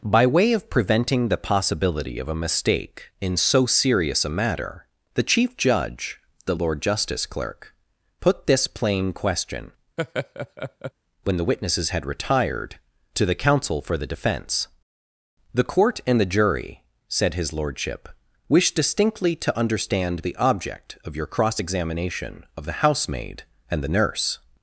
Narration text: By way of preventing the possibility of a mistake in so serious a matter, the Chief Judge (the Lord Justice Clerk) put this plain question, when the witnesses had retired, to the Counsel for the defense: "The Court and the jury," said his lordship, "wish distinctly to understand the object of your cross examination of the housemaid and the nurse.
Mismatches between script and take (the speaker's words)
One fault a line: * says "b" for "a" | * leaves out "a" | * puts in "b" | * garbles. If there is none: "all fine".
all fine